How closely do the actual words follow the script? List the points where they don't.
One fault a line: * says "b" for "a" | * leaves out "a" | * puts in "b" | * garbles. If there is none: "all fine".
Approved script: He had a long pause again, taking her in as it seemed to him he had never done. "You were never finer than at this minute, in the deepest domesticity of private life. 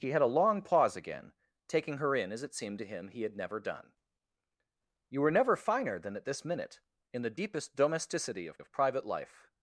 * puts in "of"